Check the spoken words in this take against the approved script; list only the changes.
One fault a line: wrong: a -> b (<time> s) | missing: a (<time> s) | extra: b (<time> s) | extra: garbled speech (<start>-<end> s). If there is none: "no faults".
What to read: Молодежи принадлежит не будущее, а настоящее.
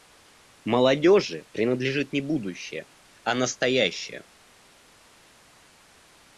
no faults